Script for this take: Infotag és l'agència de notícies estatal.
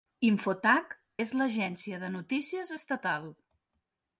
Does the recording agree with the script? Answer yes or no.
yes